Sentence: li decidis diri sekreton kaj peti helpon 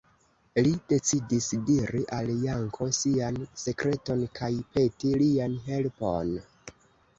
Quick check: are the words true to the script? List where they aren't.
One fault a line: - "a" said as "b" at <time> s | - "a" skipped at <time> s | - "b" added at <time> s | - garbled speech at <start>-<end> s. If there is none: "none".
- "al janko sian" added at 2.2 s
- "lian" added at 5.2 s